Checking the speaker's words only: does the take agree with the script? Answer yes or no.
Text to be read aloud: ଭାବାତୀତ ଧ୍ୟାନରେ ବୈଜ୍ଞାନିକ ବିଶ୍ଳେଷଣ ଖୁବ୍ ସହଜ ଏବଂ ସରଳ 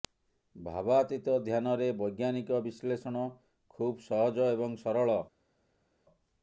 yes